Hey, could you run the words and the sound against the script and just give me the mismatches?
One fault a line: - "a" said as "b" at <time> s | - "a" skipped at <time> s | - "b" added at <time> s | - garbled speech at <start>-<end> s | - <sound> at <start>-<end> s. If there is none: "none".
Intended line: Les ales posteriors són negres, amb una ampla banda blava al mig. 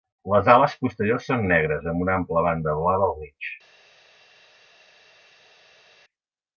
none